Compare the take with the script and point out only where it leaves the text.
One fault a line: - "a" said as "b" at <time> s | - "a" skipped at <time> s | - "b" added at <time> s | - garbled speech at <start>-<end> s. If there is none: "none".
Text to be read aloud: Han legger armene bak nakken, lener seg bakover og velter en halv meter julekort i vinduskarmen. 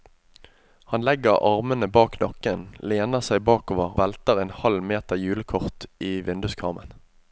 - "og" skipped at 3.9 s